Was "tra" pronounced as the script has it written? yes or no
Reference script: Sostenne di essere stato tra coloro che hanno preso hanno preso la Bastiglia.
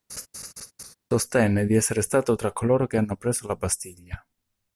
yes